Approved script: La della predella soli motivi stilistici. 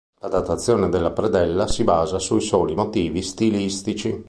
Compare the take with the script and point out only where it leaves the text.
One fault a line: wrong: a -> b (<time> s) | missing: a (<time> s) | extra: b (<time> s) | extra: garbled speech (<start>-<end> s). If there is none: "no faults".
extra: datazione (0.3 s)
extra: si basa sui (1.7 s)